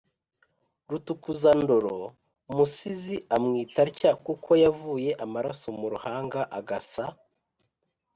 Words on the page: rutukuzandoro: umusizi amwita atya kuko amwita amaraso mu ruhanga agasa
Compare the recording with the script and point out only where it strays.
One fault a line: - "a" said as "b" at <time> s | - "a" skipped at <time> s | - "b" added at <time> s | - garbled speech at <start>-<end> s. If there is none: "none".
- "amwita" said as "yavuye" at 4.6 s